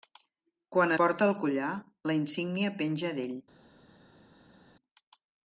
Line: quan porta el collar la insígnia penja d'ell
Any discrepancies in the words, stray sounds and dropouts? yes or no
no